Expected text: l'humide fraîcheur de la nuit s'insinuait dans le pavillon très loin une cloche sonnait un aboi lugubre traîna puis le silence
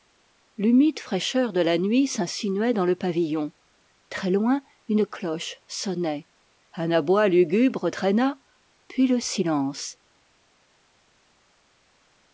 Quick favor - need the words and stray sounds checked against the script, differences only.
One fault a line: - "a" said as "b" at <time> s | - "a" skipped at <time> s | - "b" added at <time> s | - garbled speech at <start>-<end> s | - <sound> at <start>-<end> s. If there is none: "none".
none